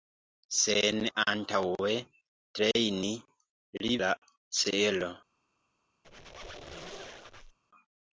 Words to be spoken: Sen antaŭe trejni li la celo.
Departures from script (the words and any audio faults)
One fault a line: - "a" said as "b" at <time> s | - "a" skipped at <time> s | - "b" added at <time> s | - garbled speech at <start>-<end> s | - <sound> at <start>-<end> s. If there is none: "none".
- squeak at 6.0-7.6 s